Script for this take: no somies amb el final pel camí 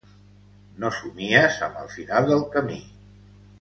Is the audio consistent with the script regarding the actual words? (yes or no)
no